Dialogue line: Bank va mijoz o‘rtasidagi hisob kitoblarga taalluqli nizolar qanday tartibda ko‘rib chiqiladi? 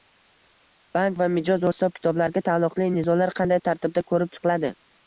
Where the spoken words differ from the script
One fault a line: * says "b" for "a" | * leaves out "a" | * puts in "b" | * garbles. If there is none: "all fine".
* leaves out "o‘rtasidagi"